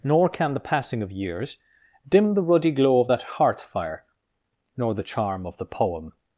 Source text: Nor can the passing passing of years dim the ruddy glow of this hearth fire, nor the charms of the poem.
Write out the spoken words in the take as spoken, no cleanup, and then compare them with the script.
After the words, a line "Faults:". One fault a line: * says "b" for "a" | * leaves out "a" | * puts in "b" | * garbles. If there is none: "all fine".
Nor can the passing of years dim the ruddy glow of that hearth fire, nor the charm of the poem.
Faults:
* leaves out "passing"
* says "that" for "this"
* says "charm" for "charms"